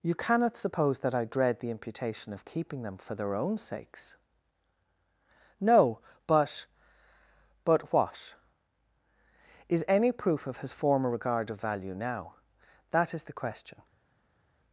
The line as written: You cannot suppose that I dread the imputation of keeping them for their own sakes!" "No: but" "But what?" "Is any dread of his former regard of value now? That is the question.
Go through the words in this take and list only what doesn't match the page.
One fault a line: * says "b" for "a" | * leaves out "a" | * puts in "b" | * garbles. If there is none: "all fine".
* says "proof" for "dread"